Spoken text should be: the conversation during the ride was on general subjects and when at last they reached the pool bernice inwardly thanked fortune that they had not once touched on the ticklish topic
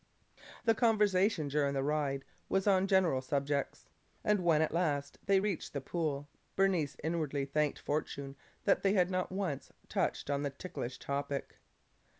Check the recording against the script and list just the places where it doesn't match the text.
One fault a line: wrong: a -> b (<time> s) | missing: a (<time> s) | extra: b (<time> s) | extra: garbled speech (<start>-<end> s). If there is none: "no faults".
no faults